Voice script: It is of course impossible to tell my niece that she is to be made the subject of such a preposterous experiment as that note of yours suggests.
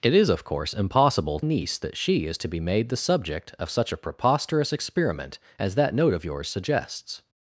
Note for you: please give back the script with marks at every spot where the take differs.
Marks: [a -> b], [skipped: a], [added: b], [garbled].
It is of course impossible [skipped: to tell my] niece that she is to be made the subject of such a preposterous experiment as that note of yours suggests.